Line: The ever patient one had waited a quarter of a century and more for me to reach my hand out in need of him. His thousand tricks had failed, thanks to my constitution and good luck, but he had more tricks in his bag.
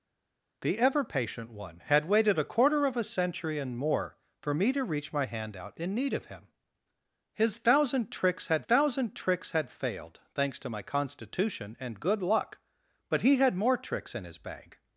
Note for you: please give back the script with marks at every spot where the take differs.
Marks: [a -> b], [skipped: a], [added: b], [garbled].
The ever patient one had waited a quarter of a century and more for me to reach my hand out in need of him. His thousand tricks had [added: thousand tricks had] failed, thanks to my constitution and good luck, but he had more tricks in his bag.